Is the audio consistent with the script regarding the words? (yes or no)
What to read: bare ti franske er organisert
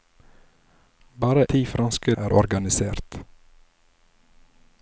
yes